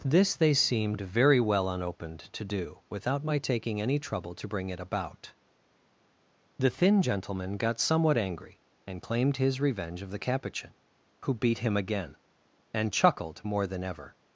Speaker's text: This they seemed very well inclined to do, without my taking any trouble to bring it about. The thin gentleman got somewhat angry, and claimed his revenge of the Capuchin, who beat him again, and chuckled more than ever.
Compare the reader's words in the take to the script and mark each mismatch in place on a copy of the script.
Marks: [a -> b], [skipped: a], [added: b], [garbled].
This they seemed very well [inclined -> unopened] to do, without my taking any trouble to bring it about. The thin gentleman got somewhat angry, and claimed his revenge of the Capuchin, who beat him again, and chuckled more than ever.